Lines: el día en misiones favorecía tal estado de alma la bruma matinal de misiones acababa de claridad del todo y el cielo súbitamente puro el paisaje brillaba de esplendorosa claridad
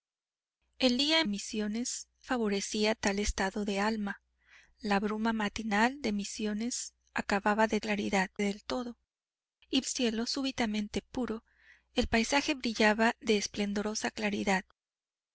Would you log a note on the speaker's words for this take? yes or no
no